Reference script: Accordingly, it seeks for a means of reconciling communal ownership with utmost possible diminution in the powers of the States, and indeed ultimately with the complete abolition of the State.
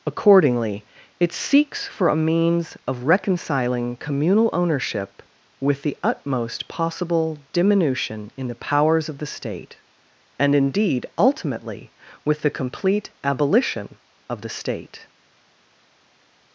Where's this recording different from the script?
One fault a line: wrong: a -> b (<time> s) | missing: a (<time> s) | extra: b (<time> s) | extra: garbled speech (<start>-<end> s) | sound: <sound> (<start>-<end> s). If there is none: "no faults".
extra: the (5.8 s)
wrong: States -> State (9.3 s)